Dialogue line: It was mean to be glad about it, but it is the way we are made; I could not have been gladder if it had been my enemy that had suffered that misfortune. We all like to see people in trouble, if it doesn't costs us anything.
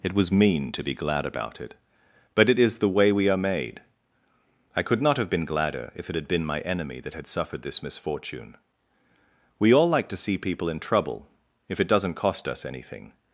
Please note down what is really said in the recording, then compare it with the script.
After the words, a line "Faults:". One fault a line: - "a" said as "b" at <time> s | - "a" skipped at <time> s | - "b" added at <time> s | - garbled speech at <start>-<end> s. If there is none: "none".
It was mean to be glad about it, but it is the way we are made; I could not have been gladder if it had been my enemy that had suffered this misfortune. We all like to see people in trouble, if it doesn't cost us anything.
Faults:
- "that" said as "this" at 7.6 s
- "costs" said as "cost" at 12.1 s